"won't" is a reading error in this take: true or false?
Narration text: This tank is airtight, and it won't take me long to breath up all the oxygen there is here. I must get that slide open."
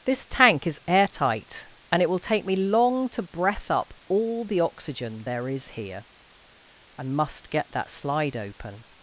true